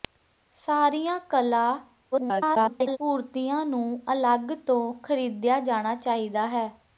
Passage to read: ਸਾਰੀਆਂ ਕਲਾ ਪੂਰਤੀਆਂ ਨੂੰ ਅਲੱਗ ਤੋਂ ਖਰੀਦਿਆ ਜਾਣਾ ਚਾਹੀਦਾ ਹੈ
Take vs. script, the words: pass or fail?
fail